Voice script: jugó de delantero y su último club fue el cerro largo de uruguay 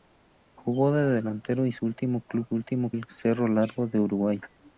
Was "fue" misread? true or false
true